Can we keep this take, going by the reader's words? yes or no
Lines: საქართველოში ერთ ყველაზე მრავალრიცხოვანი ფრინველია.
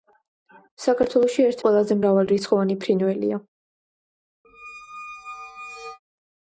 yes